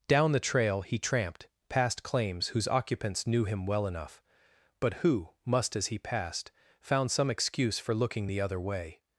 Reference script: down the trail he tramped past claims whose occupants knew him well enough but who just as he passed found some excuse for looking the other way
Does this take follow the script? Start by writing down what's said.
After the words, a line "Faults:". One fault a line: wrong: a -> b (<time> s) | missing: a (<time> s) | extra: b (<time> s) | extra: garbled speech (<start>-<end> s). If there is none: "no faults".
down the trail he tramped past claims whose occupants knew him well enough but who must as he passed found some excuse for looking the other way
Faults:
wrong: just -> must (5.5 s)